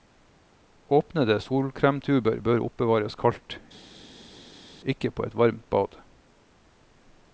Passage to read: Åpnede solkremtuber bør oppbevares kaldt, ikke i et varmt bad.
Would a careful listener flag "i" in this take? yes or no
yes